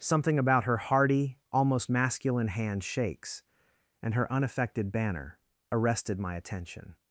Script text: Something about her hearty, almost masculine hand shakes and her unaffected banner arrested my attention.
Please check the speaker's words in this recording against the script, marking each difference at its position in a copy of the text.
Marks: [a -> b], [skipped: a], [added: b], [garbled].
Something about her hearty, almost masculine hand shakes and her unaffected banner arrested my attention.